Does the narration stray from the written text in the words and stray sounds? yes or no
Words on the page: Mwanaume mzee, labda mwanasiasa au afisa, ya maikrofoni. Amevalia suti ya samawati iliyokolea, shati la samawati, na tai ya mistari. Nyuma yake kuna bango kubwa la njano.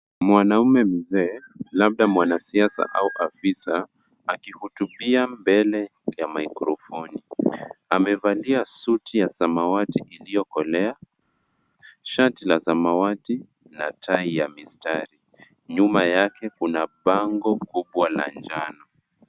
yes